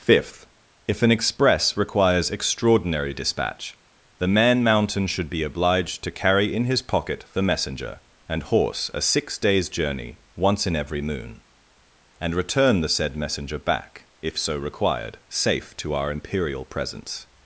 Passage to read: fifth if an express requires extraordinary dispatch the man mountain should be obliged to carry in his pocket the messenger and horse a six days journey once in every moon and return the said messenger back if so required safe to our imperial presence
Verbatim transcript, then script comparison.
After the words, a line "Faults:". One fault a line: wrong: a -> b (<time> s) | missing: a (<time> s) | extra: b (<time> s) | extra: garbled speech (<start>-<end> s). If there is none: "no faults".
fifth if an express requires extraordinary dispatch the man mountain should be obliged to carry in his pocket the messenger and horse a six days journey once in every moon and return the said messenger back if so required safe to our imperial presence
Faults:
no faults